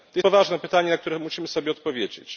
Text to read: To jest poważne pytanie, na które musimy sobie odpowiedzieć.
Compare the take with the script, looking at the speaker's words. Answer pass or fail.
fail